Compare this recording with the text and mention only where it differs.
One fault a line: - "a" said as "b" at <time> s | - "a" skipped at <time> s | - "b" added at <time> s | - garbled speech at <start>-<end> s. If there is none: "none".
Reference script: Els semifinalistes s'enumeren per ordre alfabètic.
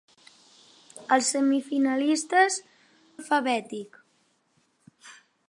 - "s'enumeren per ordre" skipped at 2.6 s